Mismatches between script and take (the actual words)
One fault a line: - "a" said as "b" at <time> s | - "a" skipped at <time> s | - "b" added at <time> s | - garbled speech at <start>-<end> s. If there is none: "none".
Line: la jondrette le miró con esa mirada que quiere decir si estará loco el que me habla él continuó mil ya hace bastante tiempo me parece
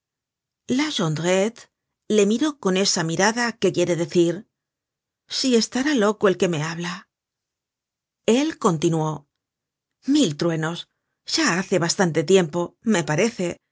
- "truenos" added at 10.4 s